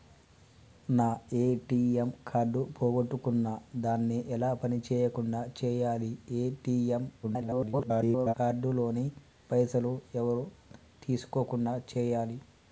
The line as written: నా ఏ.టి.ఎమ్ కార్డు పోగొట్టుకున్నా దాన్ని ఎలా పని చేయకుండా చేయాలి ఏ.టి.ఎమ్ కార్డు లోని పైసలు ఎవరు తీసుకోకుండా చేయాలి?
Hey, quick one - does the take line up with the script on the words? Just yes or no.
no